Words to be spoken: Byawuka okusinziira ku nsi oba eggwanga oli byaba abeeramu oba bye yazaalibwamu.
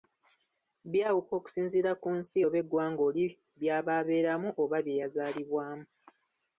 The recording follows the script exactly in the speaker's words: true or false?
true